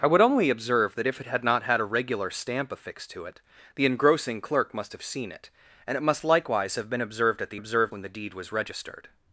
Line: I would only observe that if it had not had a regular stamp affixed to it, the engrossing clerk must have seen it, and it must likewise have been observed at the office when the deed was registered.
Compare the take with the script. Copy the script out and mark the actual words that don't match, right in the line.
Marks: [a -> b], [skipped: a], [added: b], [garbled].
I would only observe that if it had not had a regular stamp affixed to it, the engrossing clerk must have seen it, and it must likewise have been observed at the [office -> observed] when the deed was registered.